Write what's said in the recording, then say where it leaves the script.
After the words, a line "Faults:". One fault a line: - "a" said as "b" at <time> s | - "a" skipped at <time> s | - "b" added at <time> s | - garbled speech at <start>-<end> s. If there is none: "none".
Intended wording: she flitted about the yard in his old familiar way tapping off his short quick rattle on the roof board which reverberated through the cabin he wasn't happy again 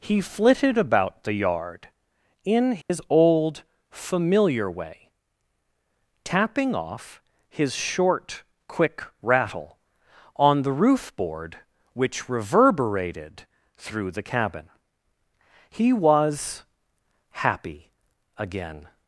he flitted about the yard in his old familiar way tapping off his short quick rattle on the roof board which reverberated through the cabin he was happy again
Faults:
- "she" said as "he" at 0.0 s
- "wasn't" said as "was" at 15.9 s